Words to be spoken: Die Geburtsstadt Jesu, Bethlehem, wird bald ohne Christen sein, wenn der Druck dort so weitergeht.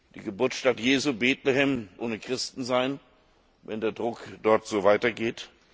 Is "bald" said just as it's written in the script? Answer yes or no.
no